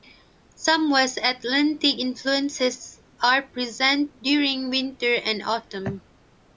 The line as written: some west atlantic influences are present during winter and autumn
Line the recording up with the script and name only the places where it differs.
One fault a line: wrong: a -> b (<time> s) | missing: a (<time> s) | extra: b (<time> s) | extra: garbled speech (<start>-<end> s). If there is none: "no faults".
no faults